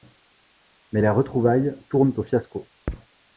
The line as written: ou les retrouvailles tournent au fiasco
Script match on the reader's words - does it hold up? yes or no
no